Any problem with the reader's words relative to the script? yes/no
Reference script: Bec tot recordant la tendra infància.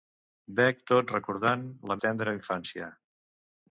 no